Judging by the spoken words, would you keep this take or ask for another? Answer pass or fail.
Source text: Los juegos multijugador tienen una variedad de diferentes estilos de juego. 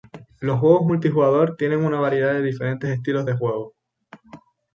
pass